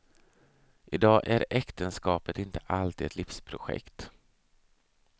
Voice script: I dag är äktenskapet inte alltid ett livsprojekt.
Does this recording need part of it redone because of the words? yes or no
no